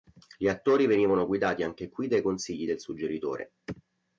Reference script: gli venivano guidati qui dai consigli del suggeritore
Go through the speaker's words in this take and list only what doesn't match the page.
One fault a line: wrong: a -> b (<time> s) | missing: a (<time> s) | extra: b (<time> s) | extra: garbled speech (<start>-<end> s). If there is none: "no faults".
extra: attori (0.5 s)
extra: anche (1.6 s)